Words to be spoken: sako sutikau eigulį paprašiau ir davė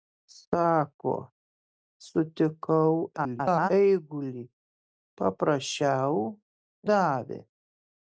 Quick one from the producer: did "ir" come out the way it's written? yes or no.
no